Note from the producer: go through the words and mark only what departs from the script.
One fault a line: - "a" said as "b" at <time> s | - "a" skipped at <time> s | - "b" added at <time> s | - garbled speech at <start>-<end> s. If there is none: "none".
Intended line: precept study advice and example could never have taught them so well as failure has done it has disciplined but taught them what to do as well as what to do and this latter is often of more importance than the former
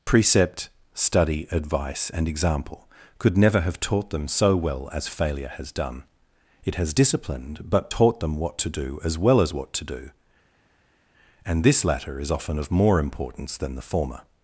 none